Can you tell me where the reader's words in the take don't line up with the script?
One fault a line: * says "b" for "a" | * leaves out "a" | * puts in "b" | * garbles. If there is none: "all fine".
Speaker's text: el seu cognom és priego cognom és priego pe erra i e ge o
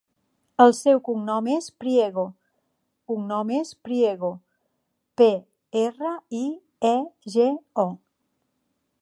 all fine